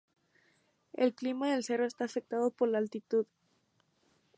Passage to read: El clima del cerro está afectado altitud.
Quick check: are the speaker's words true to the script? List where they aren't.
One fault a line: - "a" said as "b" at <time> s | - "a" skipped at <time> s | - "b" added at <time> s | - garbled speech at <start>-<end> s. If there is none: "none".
- "por la" added at 2.5 s